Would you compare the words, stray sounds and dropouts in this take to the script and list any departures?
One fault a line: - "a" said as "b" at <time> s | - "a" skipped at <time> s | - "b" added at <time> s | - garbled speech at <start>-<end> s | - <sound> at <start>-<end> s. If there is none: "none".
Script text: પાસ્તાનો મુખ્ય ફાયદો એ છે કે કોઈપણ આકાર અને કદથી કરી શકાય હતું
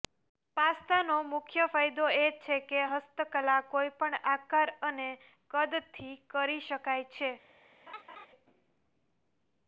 - "હસ્તકલા" added at 2.9 s
- "હતું" said as "છે" at 7.1 s
- laugh at 7.9-8.3 s